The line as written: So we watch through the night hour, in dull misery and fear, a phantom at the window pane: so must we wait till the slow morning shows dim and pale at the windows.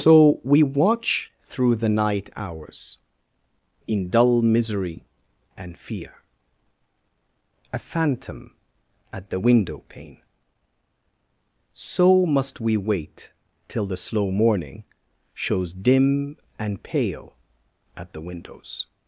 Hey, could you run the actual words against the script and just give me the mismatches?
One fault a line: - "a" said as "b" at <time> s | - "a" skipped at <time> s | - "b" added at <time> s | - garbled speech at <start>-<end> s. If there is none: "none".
- "hour" said as "hours" at 2.4 s